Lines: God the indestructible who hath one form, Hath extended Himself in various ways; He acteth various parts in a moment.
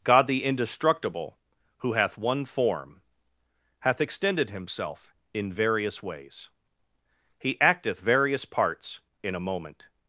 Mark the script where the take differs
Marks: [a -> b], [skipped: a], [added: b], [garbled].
God the indestructible who hath one form, Hath extended Himself in various ways; He acteth various parts in a moment.